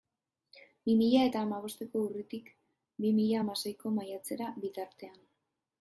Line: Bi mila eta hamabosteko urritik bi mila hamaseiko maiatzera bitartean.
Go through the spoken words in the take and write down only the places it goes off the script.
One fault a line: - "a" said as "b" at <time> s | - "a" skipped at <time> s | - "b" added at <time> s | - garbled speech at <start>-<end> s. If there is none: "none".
none